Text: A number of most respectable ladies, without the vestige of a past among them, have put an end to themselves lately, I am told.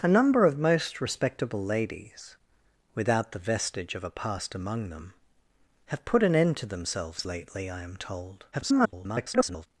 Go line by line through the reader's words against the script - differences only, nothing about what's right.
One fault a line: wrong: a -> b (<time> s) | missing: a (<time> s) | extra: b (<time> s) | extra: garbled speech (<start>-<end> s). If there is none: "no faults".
extra: garbled speech (8.5-9.7 s)